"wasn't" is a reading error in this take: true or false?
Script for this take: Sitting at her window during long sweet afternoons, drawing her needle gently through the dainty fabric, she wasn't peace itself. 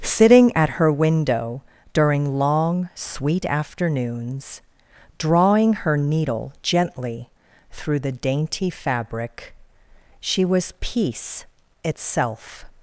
true